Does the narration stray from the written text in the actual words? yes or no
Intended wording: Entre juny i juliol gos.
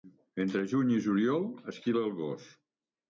yes